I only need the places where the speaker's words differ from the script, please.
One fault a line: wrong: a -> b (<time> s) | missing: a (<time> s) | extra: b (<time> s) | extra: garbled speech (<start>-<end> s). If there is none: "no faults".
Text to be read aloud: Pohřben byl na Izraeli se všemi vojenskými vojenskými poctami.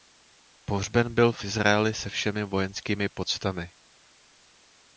wrong: na -> v (1.3 s)
missing: vojenskými (3.1 s)